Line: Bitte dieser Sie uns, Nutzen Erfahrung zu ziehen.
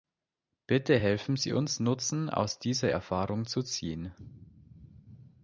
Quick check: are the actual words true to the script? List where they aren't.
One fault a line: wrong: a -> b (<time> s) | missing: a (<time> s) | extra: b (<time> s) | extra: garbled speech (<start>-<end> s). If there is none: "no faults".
wrong: dieser -> helfen (1.0 s)
extra: aus dieser (2.3 s)